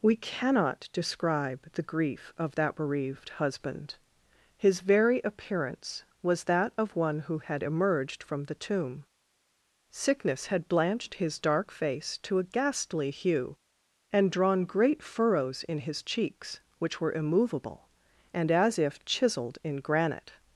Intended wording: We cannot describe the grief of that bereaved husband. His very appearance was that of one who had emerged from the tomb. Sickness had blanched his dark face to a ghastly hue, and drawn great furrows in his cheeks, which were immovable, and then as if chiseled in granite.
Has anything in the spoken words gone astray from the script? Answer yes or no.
yes